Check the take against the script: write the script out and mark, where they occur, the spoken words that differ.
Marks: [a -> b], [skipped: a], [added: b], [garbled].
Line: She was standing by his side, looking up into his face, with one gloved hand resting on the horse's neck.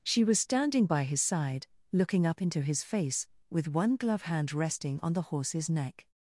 She was standing by his side, looking up into his face, with one [gloved -> glove] hand resting on the horse's neck.